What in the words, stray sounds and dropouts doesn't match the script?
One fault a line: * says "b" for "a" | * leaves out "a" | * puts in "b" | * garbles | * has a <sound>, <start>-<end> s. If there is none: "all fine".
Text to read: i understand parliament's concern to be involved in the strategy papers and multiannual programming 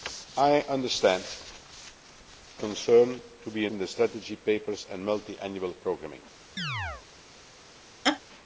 * leaves out "parliament's"
* leaves out "involved"
* has a chirp, 6.6-7.0 s
* has a laugh, 8.0-8.2 s